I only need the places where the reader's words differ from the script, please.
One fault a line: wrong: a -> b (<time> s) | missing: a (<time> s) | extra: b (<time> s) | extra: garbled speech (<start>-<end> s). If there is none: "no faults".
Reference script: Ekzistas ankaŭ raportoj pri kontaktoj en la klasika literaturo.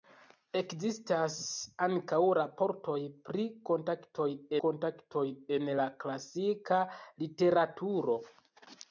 extra: kontaktoj (4.7 s)